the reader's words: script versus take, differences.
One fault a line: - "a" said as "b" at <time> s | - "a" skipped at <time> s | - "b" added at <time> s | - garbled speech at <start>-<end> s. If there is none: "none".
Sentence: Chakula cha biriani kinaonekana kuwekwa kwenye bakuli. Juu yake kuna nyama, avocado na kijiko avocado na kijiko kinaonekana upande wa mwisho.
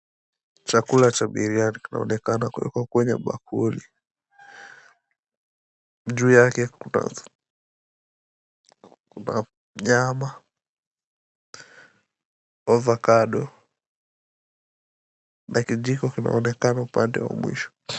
- "avocado na kijiko" skipped at 16.1 s